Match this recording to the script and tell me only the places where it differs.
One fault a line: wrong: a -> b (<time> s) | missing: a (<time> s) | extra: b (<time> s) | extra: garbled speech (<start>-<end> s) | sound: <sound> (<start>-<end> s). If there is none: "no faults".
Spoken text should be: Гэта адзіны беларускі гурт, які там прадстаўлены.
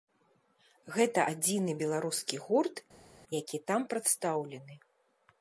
no faults